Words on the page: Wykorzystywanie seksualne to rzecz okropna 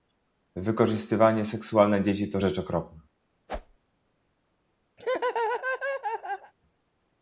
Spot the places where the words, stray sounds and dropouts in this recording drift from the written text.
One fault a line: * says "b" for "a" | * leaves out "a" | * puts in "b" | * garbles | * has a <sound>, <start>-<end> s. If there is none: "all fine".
* puts in "dzieci"
* has a whoosh, 3.5-3.8 s
* has a laugh, 5.0-6.5 s